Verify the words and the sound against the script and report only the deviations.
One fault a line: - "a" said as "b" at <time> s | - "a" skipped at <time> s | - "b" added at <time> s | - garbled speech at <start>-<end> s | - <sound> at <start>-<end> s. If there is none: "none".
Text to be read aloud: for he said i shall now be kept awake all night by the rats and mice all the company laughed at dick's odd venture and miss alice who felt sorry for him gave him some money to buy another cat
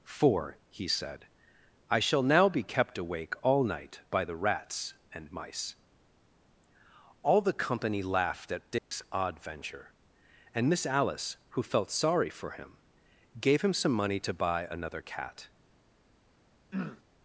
- dropout at 8.8-8.9 s
- throat clearing at 16.7-17.0 s